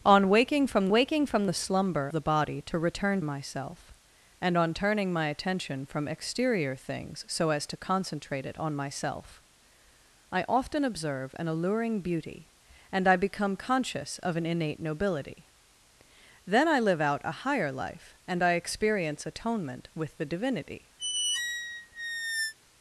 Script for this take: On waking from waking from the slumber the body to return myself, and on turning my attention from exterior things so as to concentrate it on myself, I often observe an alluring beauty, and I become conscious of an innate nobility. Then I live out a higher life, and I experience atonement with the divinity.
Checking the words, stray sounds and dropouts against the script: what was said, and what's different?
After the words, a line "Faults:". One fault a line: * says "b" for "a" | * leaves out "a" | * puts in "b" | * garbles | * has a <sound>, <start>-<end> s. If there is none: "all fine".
On waking from waking from the slumber the body to return myself, and on turning my attention from exterior things so as to concentrate it on myself, I often observe an alluring beauty, and I become conscious of an innate nobility. Then I live out a higher life, and I experience atonement with the divinity.
Faults:
* has a squeak, 21.0-22.5 s